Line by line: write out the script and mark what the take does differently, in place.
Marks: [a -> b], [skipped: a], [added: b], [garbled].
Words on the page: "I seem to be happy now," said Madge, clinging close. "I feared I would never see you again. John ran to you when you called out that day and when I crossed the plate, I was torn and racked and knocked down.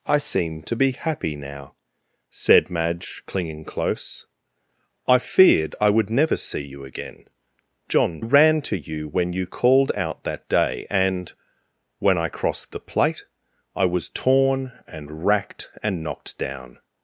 "I seem to be happy now," said Madge, clinging close. "I feared I would never see you again. John ran to you when you called out that day and when I crossed the plate, I was torn and racked and knocked down.